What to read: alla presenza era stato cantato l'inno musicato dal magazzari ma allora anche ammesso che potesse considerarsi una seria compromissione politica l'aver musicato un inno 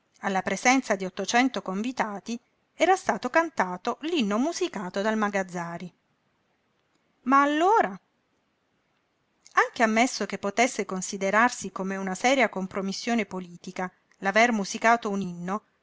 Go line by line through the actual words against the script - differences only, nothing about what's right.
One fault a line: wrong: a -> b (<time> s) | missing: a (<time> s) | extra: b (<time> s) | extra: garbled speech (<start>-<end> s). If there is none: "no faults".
extra: di ottocento convitati (0.9 s)
extra: come (11.7 s)